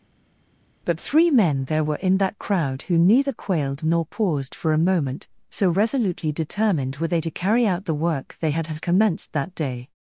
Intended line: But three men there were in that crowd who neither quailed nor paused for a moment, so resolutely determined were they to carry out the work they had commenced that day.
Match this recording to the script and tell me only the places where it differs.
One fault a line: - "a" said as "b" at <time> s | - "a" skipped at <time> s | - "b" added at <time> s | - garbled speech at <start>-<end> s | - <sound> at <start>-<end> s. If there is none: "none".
- "had" added at 8.7 s